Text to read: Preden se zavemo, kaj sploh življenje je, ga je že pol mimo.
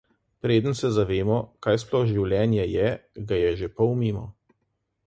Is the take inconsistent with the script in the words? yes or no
no